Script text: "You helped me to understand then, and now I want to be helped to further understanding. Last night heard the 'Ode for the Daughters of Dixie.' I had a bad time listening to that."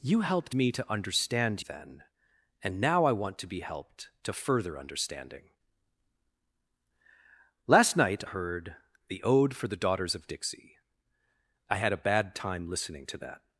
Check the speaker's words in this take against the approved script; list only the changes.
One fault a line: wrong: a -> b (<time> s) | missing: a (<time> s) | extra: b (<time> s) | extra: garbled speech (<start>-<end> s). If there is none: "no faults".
no faults